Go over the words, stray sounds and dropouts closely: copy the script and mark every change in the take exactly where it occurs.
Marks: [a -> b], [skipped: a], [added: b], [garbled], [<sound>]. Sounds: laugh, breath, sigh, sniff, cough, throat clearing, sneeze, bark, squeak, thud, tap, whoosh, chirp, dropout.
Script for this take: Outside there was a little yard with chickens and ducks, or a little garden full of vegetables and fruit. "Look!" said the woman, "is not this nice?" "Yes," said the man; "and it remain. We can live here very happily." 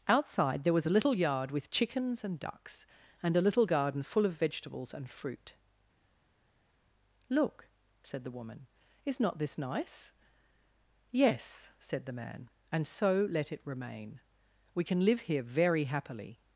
Outside there was a little yard with chickens and ducks, [or -> and] a little garden full of vegetables and fruit. "Look!" said the woman, "is not this nice?" "Yes," said the man; "and [added: so let] it remain. We can live here very happily."